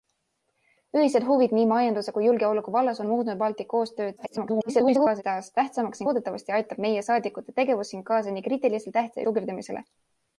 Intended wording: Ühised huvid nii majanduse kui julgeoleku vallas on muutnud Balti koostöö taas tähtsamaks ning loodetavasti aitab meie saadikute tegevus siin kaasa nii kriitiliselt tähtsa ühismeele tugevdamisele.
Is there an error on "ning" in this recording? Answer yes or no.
yes